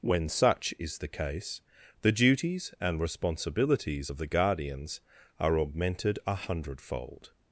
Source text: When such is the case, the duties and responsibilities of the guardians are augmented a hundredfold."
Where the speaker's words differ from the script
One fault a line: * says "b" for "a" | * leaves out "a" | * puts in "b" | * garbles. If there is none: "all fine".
all fine